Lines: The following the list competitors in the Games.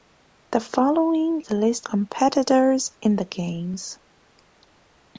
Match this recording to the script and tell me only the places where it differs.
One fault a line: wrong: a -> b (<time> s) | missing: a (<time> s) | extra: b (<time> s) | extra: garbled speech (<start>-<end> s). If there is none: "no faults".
no faults